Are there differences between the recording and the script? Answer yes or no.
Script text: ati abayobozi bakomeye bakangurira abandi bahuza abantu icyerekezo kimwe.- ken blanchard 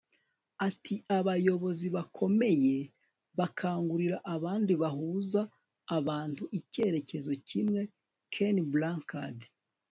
no